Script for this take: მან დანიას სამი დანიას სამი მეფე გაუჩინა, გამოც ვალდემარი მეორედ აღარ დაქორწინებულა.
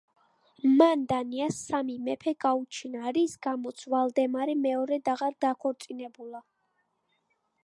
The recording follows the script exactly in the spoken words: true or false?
false